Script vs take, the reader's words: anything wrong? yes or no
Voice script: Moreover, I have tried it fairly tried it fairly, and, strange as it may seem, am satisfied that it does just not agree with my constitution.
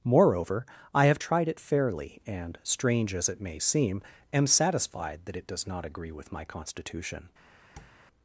yes